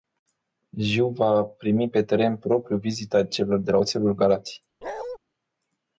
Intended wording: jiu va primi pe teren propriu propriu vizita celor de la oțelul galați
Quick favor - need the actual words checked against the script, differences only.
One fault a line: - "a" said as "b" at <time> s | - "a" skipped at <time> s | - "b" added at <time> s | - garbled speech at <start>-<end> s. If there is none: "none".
- "propriu" skipped at 2.8 s